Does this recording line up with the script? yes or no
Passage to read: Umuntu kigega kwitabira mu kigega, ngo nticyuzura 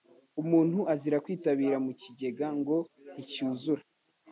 no